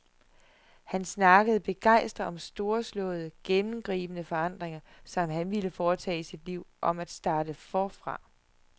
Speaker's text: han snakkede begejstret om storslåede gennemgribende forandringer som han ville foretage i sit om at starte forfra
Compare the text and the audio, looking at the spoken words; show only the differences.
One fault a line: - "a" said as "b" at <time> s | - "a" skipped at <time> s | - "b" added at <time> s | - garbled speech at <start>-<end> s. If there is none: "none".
- "liv" added at 6.5 s